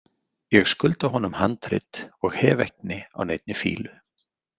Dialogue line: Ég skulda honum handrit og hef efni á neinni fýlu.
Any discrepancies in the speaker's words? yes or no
no